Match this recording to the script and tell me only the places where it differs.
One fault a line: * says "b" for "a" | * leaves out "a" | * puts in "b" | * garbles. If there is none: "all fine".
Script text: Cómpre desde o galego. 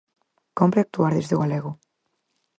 * puts in "actuar"